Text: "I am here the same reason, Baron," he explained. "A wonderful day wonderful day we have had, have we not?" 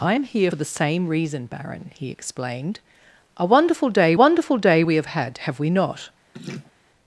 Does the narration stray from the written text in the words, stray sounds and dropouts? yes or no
yes